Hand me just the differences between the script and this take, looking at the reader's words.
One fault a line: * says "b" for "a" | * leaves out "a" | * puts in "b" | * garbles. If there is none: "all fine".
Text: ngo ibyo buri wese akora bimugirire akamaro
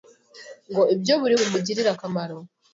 * leaves out "wese akora"